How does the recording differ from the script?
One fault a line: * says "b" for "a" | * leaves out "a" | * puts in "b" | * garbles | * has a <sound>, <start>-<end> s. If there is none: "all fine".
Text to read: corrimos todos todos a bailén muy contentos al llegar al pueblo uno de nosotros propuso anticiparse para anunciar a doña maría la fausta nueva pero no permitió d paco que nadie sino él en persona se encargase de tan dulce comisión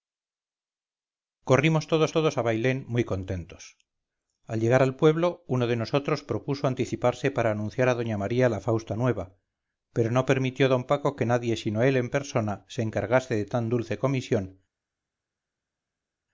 all fine